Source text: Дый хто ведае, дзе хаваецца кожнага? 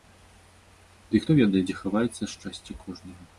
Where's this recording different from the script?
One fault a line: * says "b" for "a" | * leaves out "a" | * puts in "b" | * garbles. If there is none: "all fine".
* puts in "шчасце"